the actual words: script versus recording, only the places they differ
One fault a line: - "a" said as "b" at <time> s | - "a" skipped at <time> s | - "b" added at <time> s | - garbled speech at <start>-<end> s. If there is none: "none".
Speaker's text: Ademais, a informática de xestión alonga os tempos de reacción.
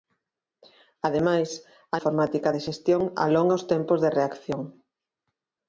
none